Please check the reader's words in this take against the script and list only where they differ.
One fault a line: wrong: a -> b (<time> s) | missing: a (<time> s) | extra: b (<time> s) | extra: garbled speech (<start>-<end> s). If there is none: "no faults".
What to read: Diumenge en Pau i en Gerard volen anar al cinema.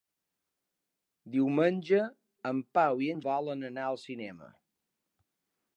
missing: Gerard (3.2 s)